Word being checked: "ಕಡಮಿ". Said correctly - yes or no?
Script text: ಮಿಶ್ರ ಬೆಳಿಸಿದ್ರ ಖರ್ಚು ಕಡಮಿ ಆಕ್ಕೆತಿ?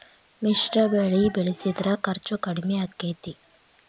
yes